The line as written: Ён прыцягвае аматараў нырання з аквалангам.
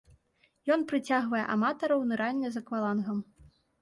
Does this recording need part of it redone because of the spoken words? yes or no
no